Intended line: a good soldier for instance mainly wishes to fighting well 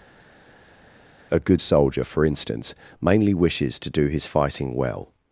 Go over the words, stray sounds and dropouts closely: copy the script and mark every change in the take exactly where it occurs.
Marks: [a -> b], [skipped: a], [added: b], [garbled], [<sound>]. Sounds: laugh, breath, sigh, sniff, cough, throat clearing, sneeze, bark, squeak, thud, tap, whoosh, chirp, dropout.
a good soldier for instance mainly wishes to [added: do his] fighting well